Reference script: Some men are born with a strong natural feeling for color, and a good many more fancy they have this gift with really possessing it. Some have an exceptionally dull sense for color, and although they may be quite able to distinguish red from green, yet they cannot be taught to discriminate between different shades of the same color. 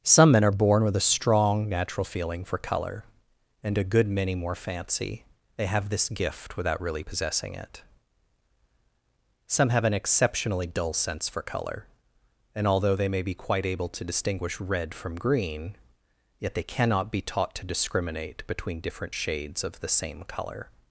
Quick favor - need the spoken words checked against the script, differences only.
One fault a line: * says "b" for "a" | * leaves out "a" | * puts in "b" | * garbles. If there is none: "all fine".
* says "without" for "with"